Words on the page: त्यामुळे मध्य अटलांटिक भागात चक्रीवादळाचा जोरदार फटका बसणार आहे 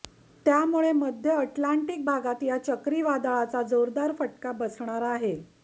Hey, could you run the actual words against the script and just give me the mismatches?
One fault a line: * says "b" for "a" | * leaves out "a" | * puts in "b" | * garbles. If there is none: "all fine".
* puts in "या"